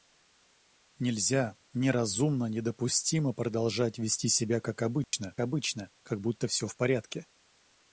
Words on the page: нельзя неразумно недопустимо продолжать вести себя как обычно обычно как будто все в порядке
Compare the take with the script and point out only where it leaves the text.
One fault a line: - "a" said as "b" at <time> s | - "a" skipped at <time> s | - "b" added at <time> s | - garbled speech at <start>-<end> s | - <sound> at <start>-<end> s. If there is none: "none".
- dropout at 5.0-5.1 s